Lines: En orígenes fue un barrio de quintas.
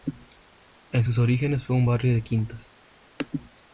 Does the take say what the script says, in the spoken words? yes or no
no